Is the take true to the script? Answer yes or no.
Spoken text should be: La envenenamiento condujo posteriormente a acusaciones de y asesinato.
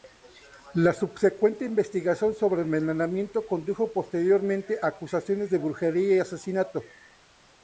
no